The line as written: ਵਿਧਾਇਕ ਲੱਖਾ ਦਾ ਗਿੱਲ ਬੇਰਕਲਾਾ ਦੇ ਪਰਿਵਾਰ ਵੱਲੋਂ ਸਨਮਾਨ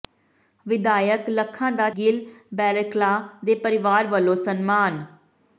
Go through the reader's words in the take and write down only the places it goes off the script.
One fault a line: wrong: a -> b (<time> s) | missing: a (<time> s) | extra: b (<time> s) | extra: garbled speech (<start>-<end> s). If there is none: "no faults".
no faults